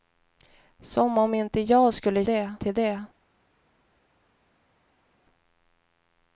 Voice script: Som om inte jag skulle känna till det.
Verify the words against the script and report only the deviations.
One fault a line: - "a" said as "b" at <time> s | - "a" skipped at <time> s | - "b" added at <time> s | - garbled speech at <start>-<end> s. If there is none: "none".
- "känna" said as "det" at 2.2 s